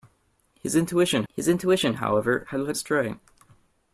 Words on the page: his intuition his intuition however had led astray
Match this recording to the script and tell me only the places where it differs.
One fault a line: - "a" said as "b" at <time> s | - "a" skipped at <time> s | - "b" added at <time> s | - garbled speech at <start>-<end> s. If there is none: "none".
none